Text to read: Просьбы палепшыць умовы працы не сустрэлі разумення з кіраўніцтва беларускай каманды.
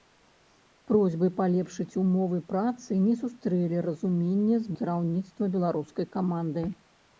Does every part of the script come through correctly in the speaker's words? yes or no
yes